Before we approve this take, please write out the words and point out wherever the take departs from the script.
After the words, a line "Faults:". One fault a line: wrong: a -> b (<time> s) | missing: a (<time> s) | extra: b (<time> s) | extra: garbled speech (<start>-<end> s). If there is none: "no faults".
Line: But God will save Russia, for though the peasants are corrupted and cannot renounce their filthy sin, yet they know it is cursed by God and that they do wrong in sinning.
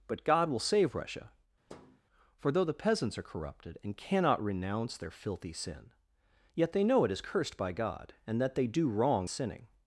But God will save Russia, for though the peasants are corrupted and cannot renounce their filthy sin, yet they know it is cursed by God and that they do wrong sinning.
Faults:
missing: in (9.3 s)